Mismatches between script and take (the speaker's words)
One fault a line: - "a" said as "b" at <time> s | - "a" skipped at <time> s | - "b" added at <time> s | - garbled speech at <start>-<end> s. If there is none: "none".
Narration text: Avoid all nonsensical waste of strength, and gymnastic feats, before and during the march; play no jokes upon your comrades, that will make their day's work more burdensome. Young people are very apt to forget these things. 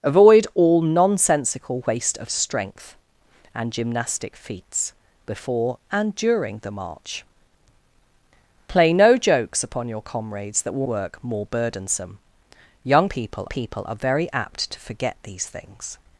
- "make their day's" skipped at 10.9 s
- "people" added at 13.5 s